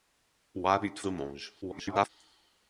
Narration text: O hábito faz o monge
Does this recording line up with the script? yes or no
no